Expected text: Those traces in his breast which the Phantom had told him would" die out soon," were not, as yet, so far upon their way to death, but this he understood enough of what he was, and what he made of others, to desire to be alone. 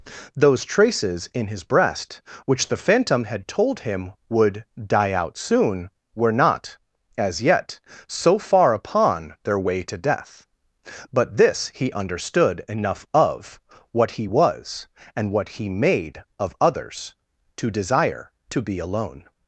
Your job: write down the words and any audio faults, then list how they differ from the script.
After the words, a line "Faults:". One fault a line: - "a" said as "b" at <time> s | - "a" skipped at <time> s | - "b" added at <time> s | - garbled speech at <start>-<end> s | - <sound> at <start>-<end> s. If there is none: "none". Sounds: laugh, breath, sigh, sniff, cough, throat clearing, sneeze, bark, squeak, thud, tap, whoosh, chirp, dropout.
Those traces in his breast which the Phantom had told him would" die out soon," were not, as yet, so far upon their way to death, but this he understood enough of what he was, and what he made of others, to desire to be alone.
Faults:
none